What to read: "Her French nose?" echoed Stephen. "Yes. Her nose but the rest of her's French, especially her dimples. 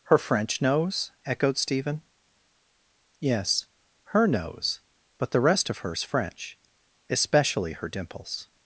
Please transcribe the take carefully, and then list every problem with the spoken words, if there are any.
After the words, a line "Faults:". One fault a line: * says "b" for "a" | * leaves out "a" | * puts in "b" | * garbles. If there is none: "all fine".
"Her French nose?" echoed Stephen. "Yes. Her nose but the rest of her's French, especially her dimples.
Faults:
all fine